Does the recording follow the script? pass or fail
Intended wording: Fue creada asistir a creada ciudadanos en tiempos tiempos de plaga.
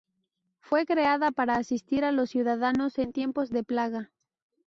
fail